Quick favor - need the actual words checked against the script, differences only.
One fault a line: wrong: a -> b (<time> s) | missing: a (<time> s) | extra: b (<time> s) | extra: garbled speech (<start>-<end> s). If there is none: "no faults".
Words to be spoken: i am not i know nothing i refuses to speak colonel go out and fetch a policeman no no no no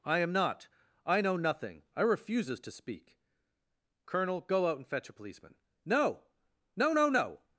no faults